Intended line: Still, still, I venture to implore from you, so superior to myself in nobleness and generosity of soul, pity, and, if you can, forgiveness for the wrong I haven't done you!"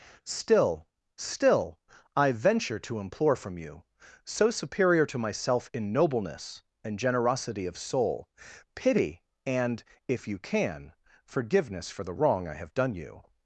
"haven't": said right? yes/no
no